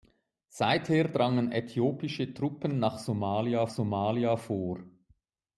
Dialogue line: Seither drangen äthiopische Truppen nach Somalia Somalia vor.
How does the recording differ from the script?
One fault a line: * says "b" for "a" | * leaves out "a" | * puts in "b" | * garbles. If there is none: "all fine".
all fine